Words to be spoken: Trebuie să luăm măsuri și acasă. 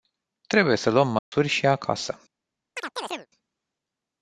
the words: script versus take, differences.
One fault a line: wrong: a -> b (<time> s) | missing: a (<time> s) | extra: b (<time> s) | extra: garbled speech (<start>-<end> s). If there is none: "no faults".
no faults